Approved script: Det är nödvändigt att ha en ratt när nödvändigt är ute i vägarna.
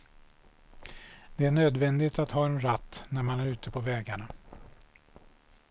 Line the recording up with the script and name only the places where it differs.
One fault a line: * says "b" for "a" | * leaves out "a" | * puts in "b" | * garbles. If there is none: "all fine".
* says "man" for "nödvändigt"
* says "på" for "i"